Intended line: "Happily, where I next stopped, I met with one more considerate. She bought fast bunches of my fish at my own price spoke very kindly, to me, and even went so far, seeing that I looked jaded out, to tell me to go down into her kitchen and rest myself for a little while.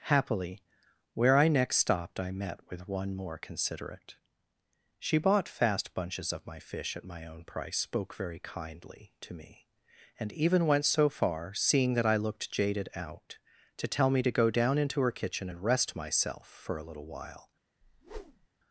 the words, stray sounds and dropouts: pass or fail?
fail